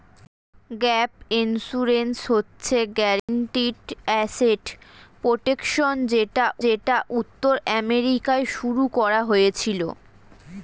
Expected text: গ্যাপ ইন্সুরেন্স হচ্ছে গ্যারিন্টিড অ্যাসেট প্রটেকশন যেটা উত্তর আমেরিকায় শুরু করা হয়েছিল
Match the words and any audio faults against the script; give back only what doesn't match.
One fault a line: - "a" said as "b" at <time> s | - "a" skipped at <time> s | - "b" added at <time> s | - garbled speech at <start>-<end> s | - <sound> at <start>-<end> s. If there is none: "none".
- dropout at 3.2-3.3 s
- "যেটা" added at 6.6 s